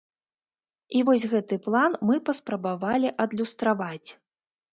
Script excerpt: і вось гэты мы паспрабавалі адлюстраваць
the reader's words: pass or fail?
fail